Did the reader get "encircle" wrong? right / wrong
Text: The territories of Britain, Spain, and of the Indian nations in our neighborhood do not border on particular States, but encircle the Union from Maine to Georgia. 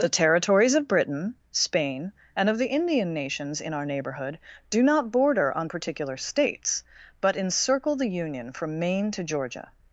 right